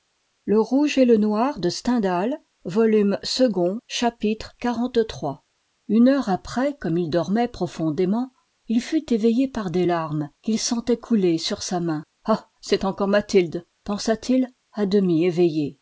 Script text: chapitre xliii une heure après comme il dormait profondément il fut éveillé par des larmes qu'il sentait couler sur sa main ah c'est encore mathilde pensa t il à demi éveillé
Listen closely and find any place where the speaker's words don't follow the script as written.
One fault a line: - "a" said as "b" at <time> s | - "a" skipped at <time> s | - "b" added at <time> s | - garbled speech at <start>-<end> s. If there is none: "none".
none